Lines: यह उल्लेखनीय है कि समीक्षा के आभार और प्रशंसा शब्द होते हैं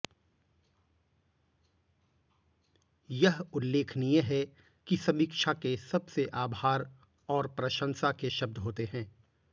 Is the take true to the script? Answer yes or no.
no